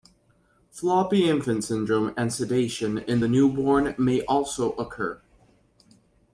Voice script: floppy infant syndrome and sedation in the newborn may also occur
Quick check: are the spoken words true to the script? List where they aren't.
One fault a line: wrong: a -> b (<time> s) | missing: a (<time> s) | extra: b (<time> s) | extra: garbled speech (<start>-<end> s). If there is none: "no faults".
no faults